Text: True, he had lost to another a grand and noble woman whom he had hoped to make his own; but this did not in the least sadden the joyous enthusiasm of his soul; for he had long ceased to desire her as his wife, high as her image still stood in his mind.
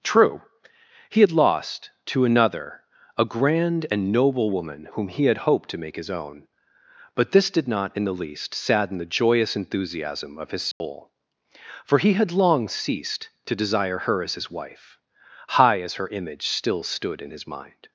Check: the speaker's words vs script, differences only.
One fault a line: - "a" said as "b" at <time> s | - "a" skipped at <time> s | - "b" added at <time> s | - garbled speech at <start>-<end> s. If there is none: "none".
none